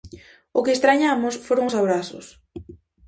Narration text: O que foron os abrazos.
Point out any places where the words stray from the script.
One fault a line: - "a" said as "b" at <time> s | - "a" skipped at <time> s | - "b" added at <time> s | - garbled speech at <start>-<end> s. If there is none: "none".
- "estrañamos" added at 0.8 s